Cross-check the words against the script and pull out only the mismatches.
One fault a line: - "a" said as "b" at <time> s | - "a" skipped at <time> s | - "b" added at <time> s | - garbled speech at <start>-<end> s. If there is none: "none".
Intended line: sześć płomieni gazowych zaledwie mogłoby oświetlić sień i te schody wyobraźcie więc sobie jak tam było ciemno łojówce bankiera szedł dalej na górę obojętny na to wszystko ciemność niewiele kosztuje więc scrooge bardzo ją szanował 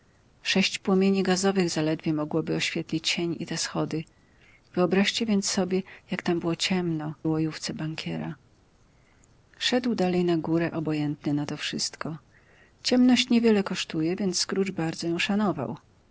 none